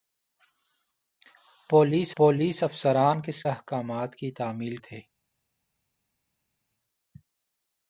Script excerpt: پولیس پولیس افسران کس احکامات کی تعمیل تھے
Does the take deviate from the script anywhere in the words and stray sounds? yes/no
no